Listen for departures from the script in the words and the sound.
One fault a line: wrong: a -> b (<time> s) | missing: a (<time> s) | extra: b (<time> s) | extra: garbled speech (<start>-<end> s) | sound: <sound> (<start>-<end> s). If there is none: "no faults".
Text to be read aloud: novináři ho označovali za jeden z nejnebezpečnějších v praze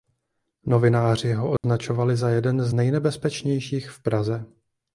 sound: dropout (1.6-1.6 s)